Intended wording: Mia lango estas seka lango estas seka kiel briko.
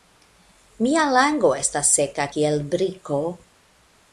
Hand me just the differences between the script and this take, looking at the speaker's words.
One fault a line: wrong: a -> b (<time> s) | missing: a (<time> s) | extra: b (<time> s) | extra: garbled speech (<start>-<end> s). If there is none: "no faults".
missing: lango estas seka (2.3 s)